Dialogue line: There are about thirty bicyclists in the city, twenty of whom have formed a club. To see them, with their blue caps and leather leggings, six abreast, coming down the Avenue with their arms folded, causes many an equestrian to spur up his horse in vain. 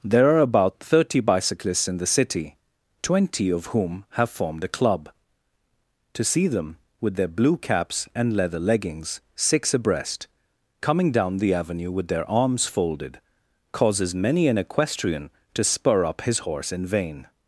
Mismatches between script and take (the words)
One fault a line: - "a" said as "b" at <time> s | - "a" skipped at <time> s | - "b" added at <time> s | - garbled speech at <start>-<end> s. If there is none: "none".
none